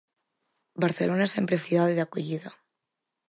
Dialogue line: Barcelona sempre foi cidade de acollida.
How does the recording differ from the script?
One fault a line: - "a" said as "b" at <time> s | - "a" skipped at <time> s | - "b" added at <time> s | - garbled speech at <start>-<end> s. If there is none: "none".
- "foi" skipped at 1.6 s